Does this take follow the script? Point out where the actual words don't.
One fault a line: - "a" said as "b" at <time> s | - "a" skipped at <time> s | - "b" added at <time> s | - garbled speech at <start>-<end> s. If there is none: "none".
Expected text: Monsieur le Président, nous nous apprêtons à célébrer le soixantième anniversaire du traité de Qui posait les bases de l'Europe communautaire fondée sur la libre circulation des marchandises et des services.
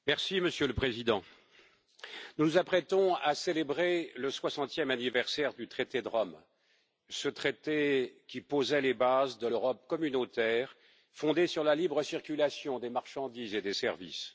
- "Rome ce traité" added at 6.1 s